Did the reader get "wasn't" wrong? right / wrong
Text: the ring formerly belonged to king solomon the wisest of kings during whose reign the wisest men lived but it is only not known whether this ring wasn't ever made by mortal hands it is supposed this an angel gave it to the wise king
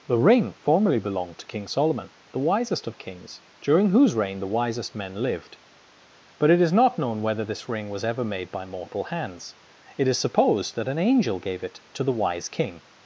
wrong